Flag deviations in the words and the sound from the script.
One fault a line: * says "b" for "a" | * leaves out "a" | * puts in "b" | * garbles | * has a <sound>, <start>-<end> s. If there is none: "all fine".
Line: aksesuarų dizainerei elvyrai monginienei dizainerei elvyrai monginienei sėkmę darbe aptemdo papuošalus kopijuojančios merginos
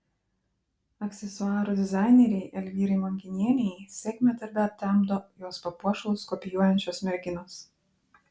* leaves out "dizainerei elvyrai monginienei"
* puts in "jos"